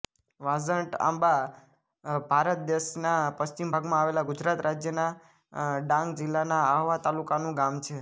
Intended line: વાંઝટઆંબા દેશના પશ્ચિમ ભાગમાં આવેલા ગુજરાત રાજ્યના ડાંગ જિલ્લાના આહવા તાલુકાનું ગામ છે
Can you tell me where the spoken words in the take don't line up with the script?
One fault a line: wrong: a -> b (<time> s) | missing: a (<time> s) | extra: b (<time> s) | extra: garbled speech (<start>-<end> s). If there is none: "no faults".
extra: ભારત (2.2 s)